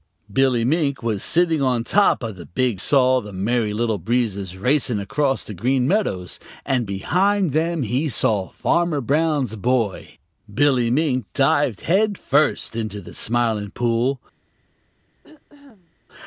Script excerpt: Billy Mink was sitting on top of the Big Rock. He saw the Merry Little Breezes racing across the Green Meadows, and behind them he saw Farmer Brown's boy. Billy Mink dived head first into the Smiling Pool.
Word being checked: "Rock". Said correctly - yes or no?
no